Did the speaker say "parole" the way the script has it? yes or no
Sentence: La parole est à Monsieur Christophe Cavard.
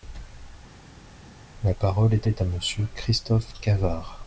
yes